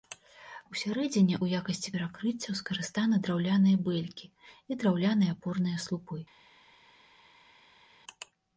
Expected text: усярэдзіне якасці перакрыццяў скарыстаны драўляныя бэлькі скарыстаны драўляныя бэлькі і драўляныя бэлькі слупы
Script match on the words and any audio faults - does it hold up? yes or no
no